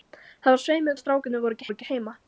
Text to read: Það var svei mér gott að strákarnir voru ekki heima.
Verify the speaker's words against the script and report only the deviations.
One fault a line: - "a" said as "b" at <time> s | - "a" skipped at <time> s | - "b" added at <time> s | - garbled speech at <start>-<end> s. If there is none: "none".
- "gott" skipped at 1.0 s
- "voru ekki" added at 1.7 s